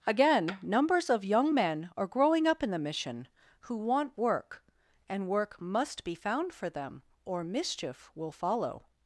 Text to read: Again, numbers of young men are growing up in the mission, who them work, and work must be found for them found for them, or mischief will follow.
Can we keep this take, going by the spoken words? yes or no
no